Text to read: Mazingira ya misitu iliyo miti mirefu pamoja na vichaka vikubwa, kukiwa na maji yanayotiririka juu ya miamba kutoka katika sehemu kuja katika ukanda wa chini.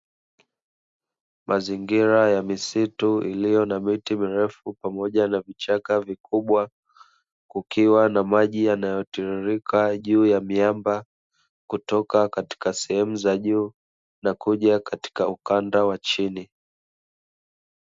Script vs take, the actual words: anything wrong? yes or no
yes